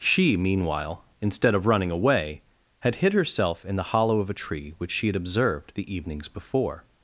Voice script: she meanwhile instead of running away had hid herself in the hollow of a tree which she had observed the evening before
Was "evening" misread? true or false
true